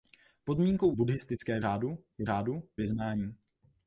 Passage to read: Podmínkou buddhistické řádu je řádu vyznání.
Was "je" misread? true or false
false